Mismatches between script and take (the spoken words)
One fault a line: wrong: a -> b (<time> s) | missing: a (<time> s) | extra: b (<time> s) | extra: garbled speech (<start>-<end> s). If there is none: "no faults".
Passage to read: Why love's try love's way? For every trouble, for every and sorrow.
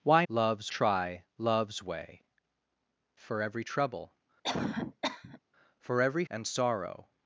no faults